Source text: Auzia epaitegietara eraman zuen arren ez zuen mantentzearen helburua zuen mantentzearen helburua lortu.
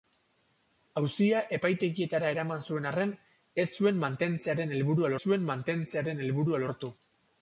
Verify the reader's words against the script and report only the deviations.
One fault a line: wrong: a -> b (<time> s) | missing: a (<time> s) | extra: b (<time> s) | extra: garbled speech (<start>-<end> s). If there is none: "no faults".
no faults